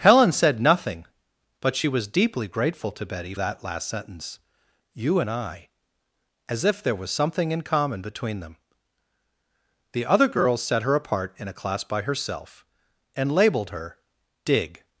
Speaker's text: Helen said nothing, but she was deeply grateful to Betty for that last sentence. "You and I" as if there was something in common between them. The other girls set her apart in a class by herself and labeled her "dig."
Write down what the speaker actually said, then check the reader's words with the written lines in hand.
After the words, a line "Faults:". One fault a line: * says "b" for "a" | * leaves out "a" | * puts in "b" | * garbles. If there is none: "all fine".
Helen said nothing, but she was deeply grateful to Betty that last sentence. "You and I" as if there was something in common between them. The other girls set her apart in a class by herself and labeled her "dig."
Faults:
* leaves out "for"